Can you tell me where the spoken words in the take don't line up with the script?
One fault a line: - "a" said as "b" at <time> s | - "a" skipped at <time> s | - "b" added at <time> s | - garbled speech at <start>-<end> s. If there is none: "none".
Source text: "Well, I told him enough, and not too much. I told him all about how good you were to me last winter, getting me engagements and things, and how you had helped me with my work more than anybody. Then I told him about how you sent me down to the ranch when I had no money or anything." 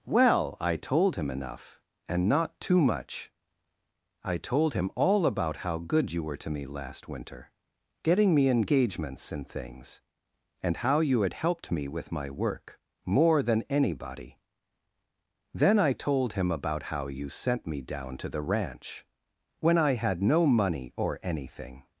none